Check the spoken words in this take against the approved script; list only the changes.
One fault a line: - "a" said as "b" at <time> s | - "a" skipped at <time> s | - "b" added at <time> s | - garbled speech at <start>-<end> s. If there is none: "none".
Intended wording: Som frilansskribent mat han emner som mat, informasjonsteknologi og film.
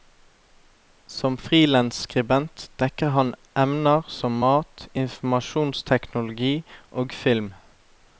- "mat" said as "dekker" at 2.8 s